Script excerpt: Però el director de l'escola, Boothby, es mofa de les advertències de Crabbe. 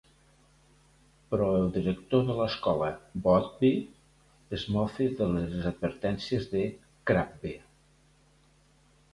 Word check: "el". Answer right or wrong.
right